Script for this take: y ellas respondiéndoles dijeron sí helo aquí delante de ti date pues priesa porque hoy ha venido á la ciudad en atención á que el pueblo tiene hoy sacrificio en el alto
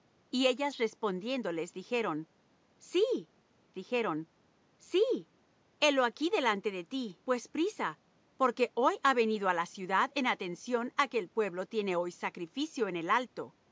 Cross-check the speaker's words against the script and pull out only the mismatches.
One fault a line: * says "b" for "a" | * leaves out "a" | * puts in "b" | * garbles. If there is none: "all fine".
* puts in "dijeron sí"
* leaves out "date"